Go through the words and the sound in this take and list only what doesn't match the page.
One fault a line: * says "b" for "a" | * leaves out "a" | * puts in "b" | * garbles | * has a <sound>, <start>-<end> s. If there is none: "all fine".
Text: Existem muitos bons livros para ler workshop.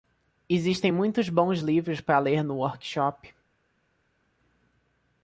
* puts in "no"